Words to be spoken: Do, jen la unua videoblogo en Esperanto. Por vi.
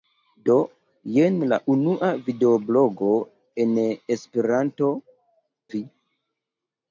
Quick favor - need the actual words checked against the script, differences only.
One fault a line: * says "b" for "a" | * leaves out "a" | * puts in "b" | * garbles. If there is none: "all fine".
* leaves out "Por"